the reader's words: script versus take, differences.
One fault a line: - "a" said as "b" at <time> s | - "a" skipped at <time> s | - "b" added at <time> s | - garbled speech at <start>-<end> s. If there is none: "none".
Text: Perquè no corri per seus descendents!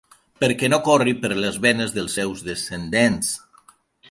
- "les venes dels" added at 1.4 s